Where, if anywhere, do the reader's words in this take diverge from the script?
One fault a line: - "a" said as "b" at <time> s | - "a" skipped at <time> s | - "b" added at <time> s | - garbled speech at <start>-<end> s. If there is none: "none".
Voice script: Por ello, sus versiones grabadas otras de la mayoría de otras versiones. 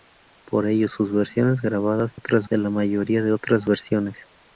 none